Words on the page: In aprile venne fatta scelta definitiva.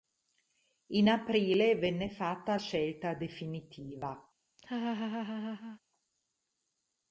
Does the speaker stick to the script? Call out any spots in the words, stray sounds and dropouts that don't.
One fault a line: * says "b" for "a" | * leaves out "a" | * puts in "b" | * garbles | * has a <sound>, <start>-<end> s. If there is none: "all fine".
* has a laugh, 4.6-5.8 s